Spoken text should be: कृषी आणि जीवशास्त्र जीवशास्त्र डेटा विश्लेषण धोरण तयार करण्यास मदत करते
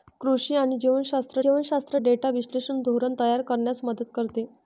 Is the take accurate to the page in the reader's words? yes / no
yes